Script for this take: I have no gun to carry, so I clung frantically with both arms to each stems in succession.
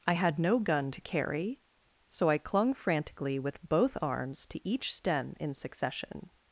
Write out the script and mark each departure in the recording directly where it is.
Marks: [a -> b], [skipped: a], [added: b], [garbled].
I [have -> had] no gun to carry, so I clung frantically with both arms to each [stems -> stem] in succession.